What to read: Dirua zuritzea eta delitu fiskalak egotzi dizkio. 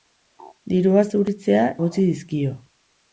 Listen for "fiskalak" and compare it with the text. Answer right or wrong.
wrong